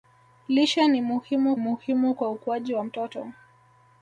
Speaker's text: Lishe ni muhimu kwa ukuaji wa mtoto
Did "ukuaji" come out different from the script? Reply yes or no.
no